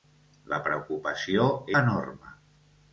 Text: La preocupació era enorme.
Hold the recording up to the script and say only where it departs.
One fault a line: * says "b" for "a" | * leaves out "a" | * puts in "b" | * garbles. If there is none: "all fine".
* leaves out "era"